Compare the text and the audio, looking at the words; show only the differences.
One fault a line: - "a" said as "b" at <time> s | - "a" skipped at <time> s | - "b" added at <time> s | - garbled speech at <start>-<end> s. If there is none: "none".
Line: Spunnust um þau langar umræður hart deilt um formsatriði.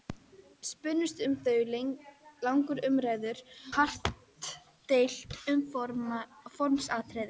none